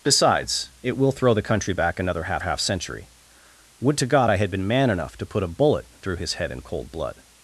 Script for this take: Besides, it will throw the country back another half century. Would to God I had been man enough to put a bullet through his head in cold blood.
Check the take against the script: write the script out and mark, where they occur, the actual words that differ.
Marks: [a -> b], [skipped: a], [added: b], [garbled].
Besides, it will throw the country back another half [added: half] century. Would to God I had been man enough to put a bullet through his head in cold blood.